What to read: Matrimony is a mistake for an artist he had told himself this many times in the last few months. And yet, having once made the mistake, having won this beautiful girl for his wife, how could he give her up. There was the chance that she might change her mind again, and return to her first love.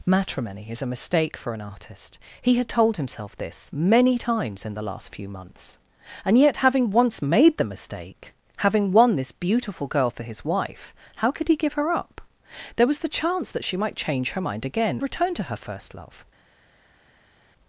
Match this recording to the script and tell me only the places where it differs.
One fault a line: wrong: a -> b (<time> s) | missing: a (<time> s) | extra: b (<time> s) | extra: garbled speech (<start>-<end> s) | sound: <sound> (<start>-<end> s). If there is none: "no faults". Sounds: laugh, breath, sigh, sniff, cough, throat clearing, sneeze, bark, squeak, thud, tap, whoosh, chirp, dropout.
missing: and (15.0 s)